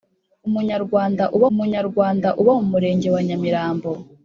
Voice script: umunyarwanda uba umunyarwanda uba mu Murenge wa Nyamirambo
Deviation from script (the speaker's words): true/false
false